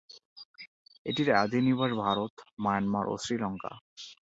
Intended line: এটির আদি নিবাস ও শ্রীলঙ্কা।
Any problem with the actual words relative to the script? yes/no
yes